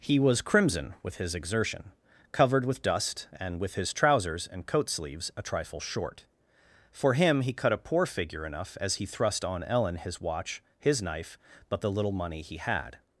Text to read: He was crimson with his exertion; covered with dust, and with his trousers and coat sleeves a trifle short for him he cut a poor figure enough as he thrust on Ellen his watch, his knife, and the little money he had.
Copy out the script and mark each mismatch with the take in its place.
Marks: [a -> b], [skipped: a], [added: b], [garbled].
He was crimson with his exertion; covered with dust, and with his trousers and coat sleeves a trifle short for him he cut a poor figure enough as he thrust on Ellen his watch, his knife, [and -> but] the little money he had.